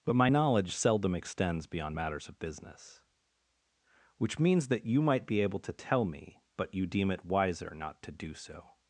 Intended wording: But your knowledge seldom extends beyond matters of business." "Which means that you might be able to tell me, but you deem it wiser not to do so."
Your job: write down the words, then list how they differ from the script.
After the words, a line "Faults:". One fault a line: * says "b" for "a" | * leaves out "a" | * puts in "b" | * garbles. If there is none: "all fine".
But my knowledge seldom extends beyond matters of business." "Which means that you might be able to tell me, but you deem it wiser not to do so."
Faults:
* says "my" for "your"